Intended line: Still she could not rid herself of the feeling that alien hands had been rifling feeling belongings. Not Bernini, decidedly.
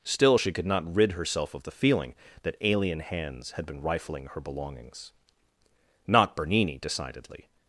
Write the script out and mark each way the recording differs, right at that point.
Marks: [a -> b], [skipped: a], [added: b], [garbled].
Still she could not rid herself of the feeling that alien hands had been rifling [feeling -> her] belongings. Not Bernini, decidedly.